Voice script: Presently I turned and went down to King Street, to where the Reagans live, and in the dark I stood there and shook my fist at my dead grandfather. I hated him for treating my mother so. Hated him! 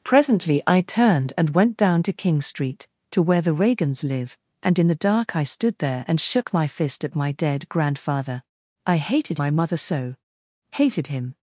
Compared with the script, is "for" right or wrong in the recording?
wrong